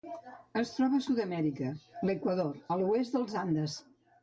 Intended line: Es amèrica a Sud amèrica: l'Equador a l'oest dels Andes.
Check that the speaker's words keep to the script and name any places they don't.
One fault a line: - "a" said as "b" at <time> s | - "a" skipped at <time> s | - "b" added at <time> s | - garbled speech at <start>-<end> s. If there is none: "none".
- "amèrica" said as "troba" at 0.8 s